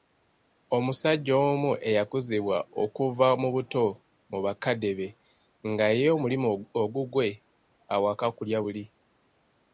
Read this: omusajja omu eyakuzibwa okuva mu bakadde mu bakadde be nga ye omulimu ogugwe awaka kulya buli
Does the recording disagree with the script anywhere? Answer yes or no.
yes